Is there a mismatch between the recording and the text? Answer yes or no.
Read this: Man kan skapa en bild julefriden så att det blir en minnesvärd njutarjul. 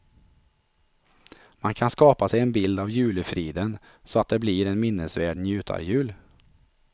yes